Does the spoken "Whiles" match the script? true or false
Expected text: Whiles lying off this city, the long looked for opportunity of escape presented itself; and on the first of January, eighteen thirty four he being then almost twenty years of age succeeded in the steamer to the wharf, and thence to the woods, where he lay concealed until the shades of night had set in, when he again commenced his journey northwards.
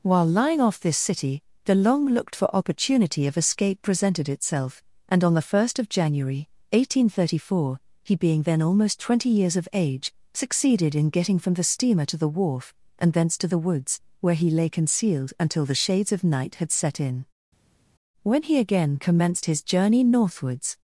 false